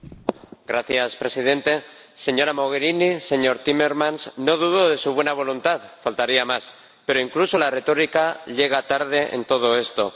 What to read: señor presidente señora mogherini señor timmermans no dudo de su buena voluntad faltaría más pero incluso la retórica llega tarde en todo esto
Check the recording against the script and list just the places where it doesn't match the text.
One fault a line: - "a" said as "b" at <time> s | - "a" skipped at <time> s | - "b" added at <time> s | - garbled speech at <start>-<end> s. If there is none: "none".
none